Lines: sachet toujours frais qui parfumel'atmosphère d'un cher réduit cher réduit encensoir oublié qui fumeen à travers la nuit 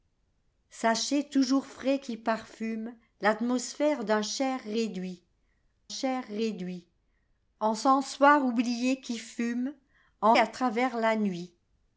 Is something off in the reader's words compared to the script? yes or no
no